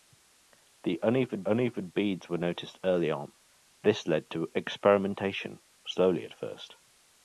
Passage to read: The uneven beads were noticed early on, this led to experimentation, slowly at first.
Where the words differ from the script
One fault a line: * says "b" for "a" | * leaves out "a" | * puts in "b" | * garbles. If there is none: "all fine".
* puts in "uneven"